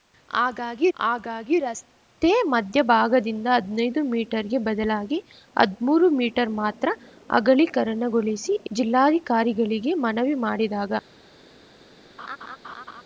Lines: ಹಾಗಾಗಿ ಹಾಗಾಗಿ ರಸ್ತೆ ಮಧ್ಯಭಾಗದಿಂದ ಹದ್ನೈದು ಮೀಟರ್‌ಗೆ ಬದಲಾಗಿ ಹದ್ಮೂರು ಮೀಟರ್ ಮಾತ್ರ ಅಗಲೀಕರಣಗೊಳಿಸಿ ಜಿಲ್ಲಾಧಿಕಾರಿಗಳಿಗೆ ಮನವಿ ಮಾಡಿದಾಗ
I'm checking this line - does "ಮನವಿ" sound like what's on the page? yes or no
yes